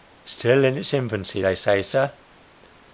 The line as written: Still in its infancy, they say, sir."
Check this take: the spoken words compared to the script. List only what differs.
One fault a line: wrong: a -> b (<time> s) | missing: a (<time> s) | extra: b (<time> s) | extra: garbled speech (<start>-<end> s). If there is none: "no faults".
no faults